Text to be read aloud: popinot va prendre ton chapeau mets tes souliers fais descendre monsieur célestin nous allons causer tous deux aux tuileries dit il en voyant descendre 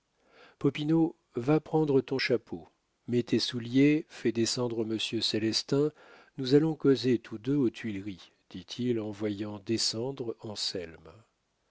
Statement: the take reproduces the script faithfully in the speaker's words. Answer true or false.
true